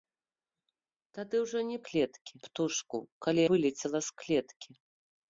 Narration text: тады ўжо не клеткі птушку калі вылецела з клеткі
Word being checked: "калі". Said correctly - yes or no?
yes